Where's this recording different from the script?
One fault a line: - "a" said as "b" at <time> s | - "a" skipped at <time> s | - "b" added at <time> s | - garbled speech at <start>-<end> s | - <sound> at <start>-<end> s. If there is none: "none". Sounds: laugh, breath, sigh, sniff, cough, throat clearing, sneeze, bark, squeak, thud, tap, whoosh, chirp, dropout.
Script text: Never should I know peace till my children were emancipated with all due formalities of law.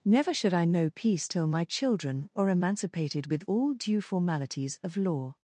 - "were" said as "are" at 2.4 s